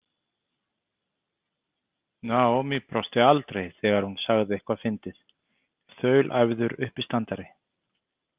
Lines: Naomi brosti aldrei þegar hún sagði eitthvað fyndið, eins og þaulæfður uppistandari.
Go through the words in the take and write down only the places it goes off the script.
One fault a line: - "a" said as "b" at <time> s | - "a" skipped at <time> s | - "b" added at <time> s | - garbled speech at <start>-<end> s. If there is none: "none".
- "eins" skipped at 5.2 s